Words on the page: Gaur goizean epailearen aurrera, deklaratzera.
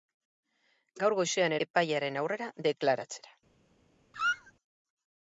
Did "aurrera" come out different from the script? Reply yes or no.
no